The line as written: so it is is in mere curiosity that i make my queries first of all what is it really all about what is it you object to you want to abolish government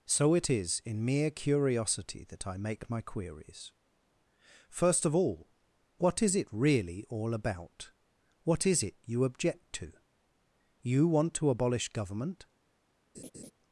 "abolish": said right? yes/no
yes